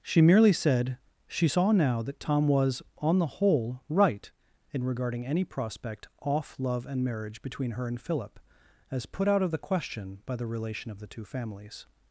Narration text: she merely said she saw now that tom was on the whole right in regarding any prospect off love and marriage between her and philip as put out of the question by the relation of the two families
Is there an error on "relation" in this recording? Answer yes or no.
no